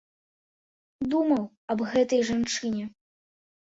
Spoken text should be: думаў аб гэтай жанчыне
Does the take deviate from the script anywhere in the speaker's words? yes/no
no